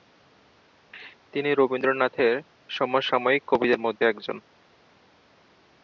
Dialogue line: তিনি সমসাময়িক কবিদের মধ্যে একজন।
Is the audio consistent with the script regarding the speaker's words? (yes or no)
no